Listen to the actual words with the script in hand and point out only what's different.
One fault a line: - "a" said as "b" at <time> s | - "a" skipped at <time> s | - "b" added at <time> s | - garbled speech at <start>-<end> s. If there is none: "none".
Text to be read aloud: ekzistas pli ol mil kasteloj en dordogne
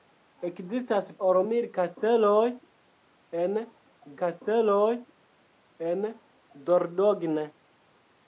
- "pli" skipped at 1.1 s
- "kasteloj en" added at 4.2 s